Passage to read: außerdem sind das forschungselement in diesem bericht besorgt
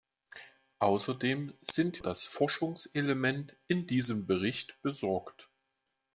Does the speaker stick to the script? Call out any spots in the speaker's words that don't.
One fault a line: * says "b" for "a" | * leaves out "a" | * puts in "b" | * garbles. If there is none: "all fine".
all fine